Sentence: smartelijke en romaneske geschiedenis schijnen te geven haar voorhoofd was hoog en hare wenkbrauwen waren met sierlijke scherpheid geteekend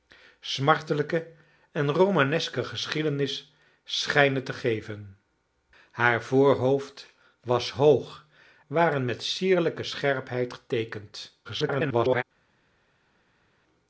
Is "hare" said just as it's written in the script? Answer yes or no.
no